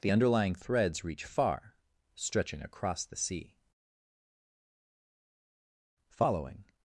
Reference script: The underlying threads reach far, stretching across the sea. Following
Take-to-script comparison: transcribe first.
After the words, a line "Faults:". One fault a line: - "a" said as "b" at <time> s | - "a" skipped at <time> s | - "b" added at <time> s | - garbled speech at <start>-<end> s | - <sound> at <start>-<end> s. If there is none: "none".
The underlying threads reach far, stretching across the sea. Following
Faults:
none